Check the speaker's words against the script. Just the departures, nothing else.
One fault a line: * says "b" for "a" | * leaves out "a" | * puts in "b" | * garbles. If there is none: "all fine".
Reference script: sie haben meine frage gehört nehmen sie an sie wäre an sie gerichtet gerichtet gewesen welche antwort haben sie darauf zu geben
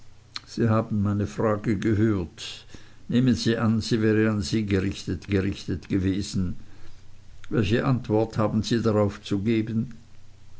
all fine